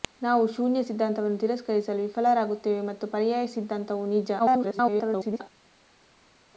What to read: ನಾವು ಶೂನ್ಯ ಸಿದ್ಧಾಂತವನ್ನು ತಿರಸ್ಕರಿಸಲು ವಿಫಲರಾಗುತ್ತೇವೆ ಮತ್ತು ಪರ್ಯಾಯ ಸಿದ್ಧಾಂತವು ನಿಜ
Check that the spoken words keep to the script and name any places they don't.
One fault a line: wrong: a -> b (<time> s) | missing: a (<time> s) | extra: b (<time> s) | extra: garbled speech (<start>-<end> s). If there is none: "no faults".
extra: garbled speech (4.4-5.4 s)